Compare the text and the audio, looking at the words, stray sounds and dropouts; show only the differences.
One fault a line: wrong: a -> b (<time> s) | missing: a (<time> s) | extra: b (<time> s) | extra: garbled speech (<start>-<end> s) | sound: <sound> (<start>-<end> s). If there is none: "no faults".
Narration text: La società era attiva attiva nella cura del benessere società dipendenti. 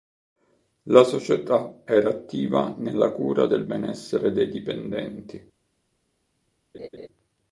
missing: attiva (2.7 s)
wrong: società -> dei (4.3 s)
sound: laugh (6.7-7.1 s)